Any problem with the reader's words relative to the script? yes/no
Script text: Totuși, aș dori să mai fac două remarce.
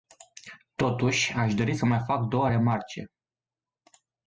no